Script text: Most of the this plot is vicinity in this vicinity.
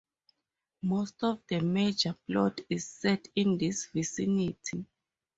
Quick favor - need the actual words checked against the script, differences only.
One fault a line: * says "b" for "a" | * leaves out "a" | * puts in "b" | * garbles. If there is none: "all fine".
* says "major" for "this"
* says "set" for "vicinity"